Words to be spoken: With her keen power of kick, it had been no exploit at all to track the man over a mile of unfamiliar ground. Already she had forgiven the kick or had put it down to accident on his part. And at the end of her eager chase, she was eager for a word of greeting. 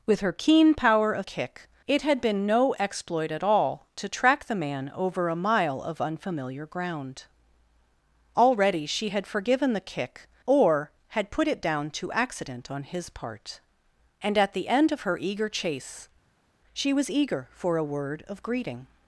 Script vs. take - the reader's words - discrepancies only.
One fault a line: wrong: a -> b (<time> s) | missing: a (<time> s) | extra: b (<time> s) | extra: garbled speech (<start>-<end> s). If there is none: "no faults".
no faults